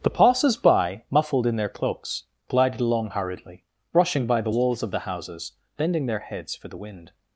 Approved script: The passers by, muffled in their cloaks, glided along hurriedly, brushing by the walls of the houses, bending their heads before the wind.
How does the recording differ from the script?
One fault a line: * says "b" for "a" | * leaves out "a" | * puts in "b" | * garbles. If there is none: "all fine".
* says "for" for "before"